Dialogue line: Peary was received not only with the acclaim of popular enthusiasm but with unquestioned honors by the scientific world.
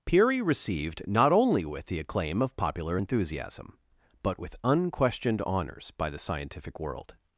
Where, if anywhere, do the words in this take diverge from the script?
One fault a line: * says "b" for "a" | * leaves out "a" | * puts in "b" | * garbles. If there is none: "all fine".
* leaves out "was"